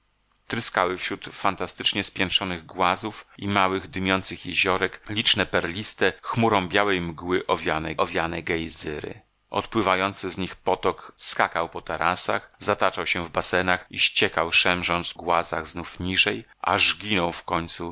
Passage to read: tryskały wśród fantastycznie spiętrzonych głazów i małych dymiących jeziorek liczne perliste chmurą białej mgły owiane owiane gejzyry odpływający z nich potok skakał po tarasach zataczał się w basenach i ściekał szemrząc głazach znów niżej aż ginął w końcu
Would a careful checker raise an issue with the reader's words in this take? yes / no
no